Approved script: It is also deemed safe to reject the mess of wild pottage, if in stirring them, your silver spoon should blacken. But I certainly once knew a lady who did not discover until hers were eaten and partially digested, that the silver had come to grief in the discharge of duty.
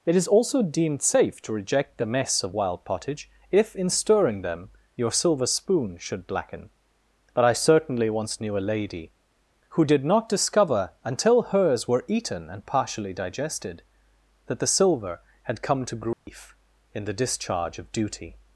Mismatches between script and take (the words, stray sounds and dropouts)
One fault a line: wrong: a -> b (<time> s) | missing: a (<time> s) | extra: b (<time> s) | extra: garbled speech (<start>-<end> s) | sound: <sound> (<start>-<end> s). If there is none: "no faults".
sound: dropout (16.1-16.3 s)